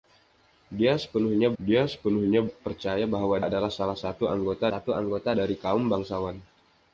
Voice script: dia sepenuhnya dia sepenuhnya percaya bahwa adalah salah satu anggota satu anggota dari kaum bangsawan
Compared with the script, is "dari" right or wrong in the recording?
right